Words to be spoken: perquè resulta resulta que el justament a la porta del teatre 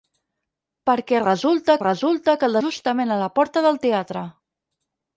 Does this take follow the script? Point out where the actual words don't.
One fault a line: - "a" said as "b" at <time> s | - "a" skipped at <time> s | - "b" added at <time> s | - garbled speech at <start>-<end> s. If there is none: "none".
none